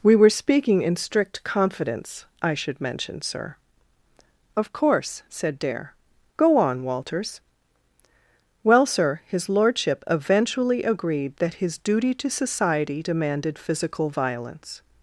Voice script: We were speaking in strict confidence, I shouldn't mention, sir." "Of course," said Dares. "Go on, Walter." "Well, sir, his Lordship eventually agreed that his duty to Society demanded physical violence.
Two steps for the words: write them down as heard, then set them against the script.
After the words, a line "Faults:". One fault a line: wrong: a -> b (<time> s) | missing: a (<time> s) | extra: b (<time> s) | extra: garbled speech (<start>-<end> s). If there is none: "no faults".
We were speaking in strict confidence, I should mention, sir." "Of course," said Dare. "Go on, Walters." "Well, sir, his Lordship eventually agreed that his duty to Society demanded physical violence.
Faults:
wrong: shouldn't -> should (2.5 s)
wrong: Dares -> Dare (5.6 s)
wrong: Walter -> Walters (6.8 s)